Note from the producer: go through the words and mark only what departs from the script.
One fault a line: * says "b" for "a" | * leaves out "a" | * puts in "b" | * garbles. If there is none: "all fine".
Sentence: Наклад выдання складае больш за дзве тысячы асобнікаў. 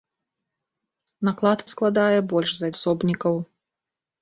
* leaves out "выдання"
* leaves out "дзве тысячы"